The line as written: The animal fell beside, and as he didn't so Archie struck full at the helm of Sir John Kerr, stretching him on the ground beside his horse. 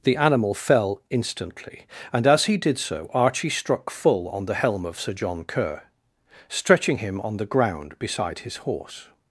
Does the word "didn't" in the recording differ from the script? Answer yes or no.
yes